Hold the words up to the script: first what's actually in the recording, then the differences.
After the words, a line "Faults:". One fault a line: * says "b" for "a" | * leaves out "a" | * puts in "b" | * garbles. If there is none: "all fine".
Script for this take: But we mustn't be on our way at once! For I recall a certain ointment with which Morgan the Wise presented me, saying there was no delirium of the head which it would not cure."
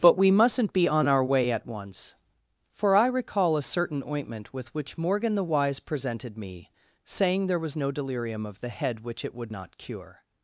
But we mustn't be on our way at once! For I recall a certain ointment with which Morgan the Wise presented me, saying there was no delirium of the head which it would not cure."
Faults:
all fine